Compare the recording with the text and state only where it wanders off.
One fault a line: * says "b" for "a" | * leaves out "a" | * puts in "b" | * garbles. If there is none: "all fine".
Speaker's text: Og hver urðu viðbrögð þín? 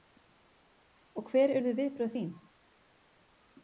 all fine